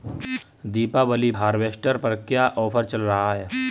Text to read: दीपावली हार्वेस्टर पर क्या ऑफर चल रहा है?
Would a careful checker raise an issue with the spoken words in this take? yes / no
no